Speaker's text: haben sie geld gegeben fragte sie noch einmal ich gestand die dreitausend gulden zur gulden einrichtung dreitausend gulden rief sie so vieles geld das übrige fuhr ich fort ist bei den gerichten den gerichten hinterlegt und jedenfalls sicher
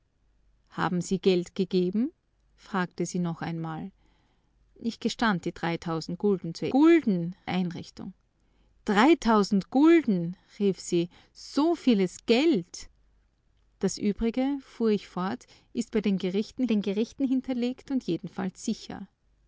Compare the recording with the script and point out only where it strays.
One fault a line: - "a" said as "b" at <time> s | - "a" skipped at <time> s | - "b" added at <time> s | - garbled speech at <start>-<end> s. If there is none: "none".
none